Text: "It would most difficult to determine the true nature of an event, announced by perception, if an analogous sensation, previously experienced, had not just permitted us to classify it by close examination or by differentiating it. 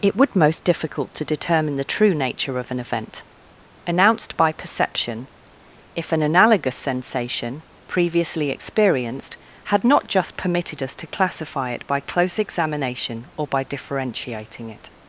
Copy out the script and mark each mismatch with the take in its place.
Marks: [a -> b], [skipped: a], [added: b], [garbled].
"It would most difficult to determine the true nature of an event, announced by perception, if an analogous sensation, previously experienced, had not just permitted us to classify it by close examination or by differentiating it.